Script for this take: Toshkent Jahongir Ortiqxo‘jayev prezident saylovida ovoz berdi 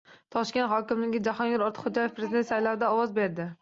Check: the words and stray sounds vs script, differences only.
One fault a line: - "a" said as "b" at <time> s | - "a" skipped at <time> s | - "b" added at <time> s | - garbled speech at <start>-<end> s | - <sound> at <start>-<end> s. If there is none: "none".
- "hokimi" added at 0.7 s